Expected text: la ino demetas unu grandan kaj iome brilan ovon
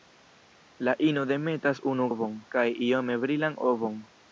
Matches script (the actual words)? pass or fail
fail